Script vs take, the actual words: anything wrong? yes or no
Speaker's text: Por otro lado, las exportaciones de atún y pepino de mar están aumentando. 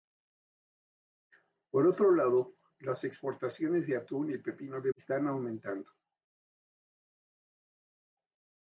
yes